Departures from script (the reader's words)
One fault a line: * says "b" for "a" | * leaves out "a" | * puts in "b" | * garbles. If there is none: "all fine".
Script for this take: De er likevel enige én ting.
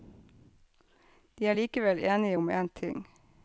* puts in "om"